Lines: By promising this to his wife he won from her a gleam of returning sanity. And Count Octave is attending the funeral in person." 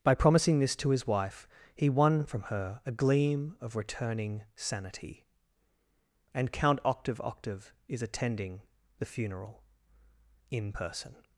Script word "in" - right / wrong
right